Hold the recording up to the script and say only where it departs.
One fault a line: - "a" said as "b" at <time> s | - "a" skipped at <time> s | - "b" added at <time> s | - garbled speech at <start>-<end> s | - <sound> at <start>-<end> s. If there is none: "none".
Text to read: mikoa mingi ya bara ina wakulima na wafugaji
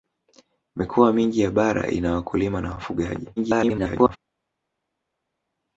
- garbled speech at 3.4-4.2 s